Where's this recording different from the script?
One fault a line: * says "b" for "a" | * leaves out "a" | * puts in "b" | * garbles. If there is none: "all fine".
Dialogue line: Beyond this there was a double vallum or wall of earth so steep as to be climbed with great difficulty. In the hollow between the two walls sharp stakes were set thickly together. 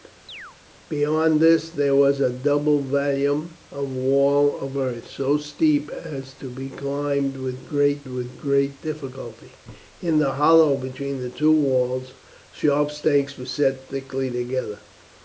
* puts in "with great"